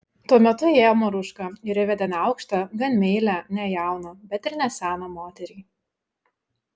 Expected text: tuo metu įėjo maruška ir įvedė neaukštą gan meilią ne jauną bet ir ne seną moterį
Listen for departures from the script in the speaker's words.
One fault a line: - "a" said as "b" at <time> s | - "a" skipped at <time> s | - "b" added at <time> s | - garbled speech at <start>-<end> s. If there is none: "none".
none